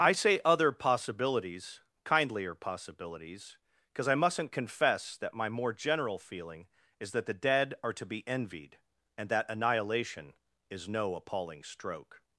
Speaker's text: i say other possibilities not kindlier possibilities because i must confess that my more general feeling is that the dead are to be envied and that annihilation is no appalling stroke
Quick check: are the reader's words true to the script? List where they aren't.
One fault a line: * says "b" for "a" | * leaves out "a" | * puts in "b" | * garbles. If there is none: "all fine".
* leaves out "not"
* says "mustn't" for "must"